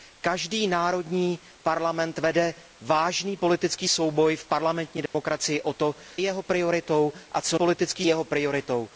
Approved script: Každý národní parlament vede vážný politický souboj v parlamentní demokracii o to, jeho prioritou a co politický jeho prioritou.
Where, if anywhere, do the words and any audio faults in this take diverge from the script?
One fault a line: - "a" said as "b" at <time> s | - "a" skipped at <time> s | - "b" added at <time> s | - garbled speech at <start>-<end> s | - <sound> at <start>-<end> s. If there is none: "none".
- dropout at 5.1-5.1 s